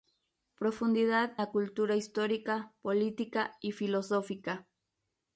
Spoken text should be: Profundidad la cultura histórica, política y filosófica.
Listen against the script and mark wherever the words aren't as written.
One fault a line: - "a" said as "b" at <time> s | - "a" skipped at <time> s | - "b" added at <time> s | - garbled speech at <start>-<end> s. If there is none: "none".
none